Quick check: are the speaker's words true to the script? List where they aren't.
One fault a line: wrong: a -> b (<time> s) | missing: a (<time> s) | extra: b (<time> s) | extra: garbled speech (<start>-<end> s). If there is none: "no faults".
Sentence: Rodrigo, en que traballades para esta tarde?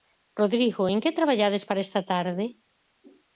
no faults